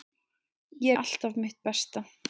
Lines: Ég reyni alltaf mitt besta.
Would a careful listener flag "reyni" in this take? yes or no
yes